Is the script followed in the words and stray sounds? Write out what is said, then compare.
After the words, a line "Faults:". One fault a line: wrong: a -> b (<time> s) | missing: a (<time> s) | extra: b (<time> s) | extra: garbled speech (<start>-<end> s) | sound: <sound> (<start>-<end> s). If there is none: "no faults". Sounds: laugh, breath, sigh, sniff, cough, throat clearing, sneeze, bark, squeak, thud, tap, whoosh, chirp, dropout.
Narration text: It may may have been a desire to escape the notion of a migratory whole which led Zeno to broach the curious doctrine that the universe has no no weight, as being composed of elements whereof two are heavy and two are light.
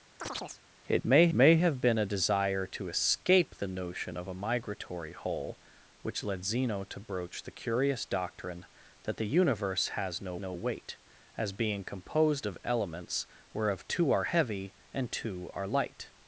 It may may have been a desire to escape the notion of a migratory whole which led Zeno to broach the curious doctrine that the universe has no no weight, as being composed of elements whereof two are heavy and two are light.
Faults:
sound: chirp (0.2-0.6 s)